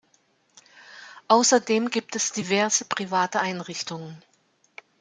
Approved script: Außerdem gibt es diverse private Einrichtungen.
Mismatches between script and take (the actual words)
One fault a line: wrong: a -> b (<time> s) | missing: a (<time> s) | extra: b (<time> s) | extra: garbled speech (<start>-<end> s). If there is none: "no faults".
no faults